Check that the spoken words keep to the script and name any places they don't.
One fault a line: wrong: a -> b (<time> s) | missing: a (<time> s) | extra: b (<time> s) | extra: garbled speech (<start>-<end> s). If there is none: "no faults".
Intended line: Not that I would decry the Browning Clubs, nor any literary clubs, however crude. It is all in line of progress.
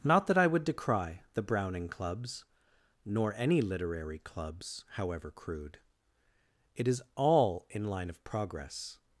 no faults